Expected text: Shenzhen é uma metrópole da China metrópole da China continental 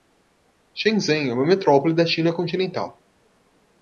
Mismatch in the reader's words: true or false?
true